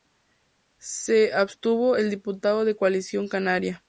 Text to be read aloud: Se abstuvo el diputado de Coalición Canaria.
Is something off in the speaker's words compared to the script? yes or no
no